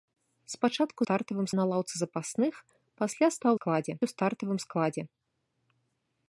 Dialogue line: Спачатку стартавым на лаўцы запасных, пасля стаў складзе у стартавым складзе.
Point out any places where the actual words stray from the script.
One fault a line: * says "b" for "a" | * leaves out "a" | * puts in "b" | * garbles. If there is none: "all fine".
all fine